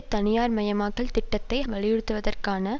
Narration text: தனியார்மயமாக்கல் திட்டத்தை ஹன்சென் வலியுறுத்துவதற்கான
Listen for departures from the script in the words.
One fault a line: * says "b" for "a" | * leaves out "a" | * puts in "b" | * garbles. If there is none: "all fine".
* leaves out "ஹன்சென்"